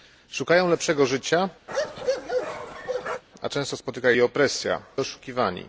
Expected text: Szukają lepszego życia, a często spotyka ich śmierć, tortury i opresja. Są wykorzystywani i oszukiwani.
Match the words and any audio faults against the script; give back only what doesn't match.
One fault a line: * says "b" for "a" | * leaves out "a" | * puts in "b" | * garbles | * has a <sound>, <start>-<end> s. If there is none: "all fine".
* has a bark, 1.7-3.2 s
* leaves out "ich śmierć tortury"
* leaves out "Są wykorzystywani i"